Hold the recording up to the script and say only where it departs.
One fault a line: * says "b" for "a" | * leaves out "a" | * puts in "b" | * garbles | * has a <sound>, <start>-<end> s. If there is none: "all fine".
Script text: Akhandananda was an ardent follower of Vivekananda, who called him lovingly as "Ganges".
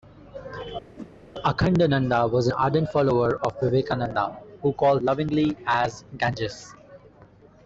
* has a whoosh, 1.0-1.1 s
* leaves out "him"